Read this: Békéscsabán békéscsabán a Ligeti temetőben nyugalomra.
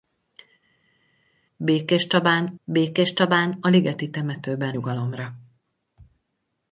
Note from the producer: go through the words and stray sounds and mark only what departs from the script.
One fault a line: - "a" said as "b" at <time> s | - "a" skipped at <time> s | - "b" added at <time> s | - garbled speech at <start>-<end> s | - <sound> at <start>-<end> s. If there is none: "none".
none